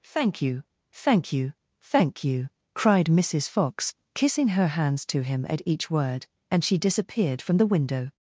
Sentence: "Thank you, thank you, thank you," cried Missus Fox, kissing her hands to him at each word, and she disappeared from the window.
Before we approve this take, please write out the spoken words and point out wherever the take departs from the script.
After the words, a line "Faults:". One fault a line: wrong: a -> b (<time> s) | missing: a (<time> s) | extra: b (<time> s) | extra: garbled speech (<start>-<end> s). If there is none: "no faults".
"Thank you, thank you, thank you," cried Missus Fox, kissing her hands to him at each word, and she disappeared from the window.
Faults:
no faults